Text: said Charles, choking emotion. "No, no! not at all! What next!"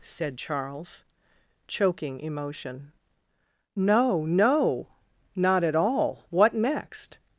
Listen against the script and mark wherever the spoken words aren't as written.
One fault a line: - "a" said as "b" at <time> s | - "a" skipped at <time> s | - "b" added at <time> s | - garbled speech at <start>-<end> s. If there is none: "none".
none